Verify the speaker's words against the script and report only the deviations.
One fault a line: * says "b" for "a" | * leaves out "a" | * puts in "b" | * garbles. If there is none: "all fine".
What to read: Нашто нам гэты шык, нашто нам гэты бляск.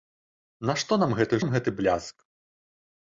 * leaves out "шык нашто"